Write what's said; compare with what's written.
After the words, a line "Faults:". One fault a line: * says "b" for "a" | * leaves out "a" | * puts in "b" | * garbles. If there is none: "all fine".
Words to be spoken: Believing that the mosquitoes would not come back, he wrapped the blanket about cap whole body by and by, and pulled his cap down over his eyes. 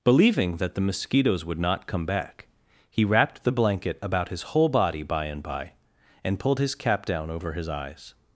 Believing that the mosquitoes would not come back, he wrapped the blanket about his whole body by and by, and pulled his cap down over his eyes.
Faults:
* says "his" for "cap"